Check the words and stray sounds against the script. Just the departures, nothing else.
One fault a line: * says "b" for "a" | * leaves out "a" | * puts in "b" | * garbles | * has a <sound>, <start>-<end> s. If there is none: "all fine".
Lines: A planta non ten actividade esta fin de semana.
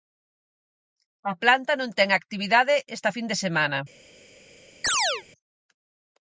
* has a chirp, 4.8-5.2 s